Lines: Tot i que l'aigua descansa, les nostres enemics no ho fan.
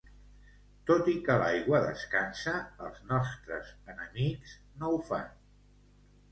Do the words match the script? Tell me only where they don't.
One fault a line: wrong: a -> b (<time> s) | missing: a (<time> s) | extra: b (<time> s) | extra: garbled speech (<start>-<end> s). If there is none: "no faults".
wrong: les -> els (2.9 s)